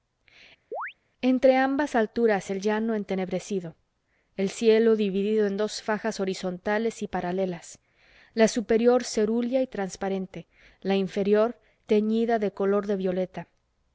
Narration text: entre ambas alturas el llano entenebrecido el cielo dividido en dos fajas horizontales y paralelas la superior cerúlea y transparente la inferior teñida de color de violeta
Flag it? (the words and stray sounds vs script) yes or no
yes